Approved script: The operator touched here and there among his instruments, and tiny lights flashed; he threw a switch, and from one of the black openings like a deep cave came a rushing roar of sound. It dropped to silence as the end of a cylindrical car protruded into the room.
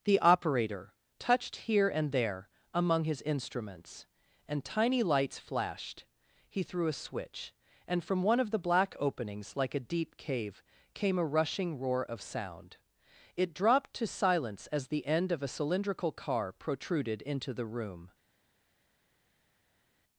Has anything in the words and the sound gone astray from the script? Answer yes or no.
no